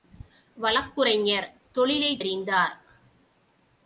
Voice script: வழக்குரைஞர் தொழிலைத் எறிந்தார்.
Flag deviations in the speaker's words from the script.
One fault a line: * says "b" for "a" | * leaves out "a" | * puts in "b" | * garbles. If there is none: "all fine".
all fine